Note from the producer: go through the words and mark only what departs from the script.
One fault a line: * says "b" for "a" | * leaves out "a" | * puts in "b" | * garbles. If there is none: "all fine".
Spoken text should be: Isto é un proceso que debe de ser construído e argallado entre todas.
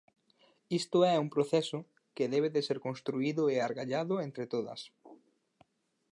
all fine